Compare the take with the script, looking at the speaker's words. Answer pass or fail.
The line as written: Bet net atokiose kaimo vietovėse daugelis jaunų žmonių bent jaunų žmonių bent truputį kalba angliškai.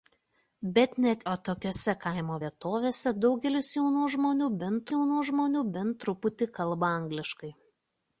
pass